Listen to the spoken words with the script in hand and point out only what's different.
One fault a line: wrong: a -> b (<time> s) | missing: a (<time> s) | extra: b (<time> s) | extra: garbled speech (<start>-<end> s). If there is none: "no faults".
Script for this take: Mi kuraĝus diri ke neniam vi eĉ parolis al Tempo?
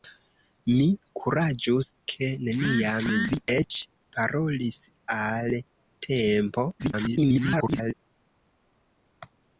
missing: diri (1.9 s)
extra: garbled speech (6.8-7.9 s)